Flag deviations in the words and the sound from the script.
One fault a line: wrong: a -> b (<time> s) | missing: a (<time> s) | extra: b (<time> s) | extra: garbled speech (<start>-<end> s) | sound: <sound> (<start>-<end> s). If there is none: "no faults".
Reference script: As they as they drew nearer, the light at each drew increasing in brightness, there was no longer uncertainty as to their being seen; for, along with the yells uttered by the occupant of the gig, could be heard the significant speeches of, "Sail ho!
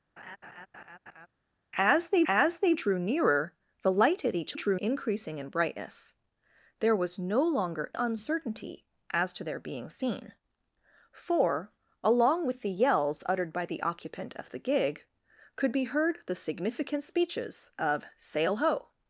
sound: laugh (0.2-1.3 s)